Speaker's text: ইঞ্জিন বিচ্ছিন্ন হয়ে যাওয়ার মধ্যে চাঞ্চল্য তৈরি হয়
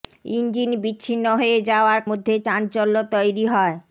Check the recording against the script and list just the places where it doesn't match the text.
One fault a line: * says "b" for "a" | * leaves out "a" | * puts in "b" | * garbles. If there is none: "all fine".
all fine